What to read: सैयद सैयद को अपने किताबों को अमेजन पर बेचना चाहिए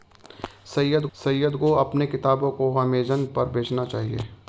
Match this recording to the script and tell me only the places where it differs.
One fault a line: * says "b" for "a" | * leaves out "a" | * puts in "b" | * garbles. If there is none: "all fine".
all fine